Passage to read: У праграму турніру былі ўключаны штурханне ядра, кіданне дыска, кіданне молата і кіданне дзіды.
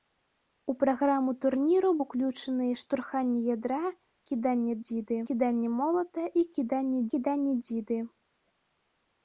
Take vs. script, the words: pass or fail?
fail